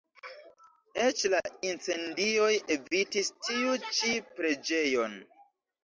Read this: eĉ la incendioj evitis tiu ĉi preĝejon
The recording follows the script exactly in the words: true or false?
true